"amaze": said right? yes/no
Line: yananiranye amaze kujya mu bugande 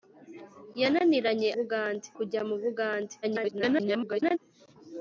no